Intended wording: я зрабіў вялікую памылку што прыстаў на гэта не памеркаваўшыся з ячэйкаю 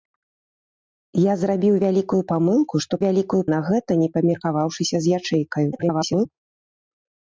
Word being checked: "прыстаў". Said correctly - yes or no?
no